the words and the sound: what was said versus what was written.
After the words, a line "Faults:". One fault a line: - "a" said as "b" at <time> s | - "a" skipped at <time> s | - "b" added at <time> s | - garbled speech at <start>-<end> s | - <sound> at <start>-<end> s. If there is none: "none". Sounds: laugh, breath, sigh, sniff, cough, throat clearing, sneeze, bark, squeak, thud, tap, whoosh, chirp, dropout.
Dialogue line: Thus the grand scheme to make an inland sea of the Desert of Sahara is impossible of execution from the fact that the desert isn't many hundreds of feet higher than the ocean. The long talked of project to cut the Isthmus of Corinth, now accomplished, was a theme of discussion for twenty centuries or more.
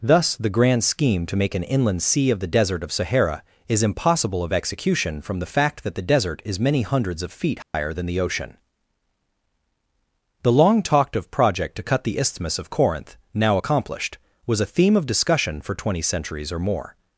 Thus the grand scheme to make an inland sea of the Desert of Sahara is impossible of execution from the fact that the desert is many hundreds of feet higher than the ocean. The long talked of project to cut the Isthmus of Corinth, now accomplished, was a theme of discussion for twenty centuries or more.
Faults:
- "isn't" said as "is" at 6.4 s
- dropout at 7.6-7.7 s